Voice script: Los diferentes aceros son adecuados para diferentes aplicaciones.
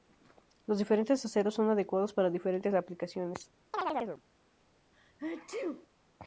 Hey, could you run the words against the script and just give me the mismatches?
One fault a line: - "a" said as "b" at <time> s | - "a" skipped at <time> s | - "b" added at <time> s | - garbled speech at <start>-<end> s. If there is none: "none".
none